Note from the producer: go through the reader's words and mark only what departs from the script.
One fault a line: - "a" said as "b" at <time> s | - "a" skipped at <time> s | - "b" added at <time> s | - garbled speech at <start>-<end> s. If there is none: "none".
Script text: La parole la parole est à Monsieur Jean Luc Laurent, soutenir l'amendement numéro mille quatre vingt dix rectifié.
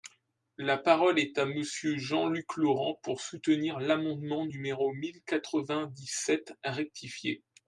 - "la parole" skipped at 1.2 s
- "pour" added at 3.0 s
- "sept" added at 6.1 s